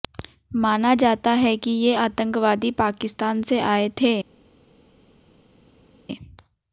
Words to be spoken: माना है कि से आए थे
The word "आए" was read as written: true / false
true